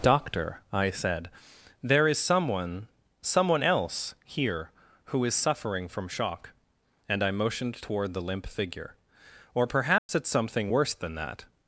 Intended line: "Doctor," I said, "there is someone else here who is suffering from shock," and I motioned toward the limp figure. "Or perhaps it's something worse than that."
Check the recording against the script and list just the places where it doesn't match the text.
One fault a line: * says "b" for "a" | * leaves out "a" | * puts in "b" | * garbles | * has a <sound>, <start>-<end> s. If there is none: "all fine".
* puts in "someone"
* has a dropout, 10.0-10.1 s